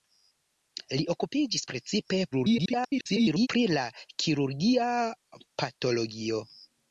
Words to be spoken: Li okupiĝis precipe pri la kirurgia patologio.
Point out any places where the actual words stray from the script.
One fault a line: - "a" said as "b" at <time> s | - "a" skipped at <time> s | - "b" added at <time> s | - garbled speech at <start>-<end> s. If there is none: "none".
- garbled speech at 2.3-3.5 s